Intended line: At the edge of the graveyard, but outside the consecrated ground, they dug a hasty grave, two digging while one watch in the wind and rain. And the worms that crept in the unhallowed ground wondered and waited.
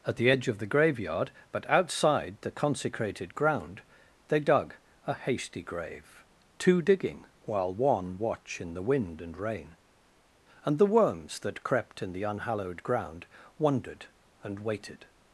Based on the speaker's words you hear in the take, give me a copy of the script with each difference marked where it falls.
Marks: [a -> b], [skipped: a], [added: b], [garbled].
At the edge of the graveyard, but outside the consecrated ground, they dug a hasty grave, two digging while one watch in the wind and rain. And the worms that crept in the unhallowed ground wondered and waited.